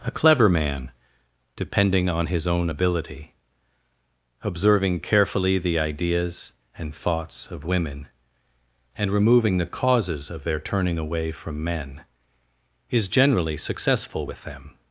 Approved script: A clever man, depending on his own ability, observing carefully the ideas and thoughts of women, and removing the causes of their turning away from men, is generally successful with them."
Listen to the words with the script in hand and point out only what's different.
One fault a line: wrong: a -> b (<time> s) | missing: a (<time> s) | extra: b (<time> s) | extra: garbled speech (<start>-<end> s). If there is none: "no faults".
no faults